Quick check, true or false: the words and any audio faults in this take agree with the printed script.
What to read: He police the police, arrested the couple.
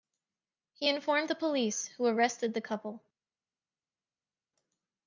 false